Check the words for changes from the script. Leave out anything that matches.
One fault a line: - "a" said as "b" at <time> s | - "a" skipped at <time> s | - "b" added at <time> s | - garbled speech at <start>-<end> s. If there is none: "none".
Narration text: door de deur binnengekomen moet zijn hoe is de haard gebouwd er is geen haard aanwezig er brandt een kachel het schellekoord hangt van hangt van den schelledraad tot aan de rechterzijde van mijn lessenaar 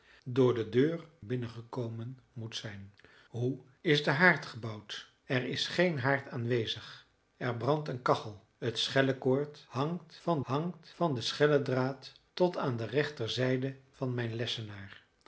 none